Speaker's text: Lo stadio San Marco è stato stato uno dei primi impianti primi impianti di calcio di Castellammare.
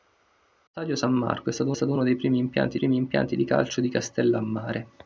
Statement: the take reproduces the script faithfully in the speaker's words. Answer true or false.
true